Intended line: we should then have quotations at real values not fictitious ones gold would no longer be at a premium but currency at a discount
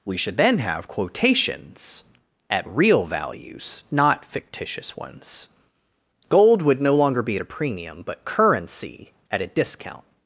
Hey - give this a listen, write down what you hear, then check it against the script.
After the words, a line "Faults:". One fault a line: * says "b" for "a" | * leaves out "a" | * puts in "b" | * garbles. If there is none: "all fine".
we should then have quotations at real values not fictitious ones gold would no longer be at a premium but currency at a discount
Faults:
all fine